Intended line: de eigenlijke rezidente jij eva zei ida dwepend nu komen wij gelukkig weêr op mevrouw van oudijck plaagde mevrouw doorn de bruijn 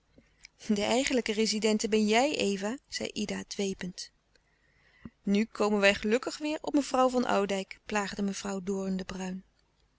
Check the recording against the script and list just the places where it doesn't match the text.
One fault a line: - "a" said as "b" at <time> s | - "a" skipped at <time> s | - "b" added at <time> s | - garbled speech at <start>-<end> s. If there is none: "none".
- "ben" added at 1.9 s